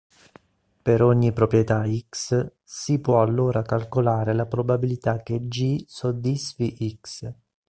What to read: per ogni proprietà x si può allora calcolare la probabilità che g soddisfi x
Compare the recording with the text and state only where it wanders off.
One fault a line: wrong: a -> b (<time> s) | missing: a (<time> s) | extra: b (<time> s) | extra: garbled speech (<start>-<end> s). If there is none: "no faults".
no faults